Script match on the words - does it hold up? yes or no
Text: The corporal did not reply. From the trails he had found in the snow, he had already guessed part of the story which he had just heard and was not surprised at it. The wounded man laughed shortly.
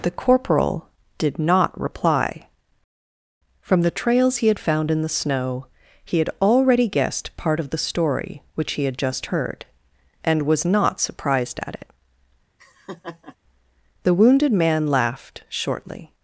yes